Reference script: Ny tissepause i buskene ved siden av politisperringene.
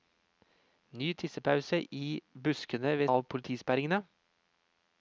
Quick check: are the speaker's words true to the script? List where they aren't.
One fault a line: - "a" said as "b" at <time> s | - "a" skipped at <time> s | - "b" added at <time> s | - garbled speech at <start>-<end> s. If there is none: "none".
- "siden" skipped at 3.1 s